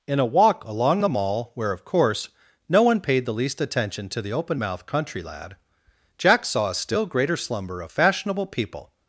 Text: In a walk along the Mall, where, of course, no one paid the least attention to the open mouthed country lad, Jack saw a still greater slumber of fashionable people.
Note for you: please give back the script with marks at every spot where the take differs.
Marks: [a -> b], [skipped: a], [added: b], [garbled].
In a walk along the Mall, where, of course, no one paid the least attention to the open mouthed country lad, Jack saw a still greater slumber of fashionable people.